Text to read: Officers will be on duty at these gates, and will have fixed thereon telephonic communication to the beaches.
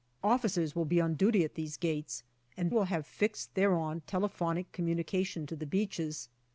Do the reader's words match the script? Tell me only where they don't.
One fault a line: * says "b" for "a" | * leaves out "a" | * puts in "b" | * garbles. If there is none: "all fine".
all fine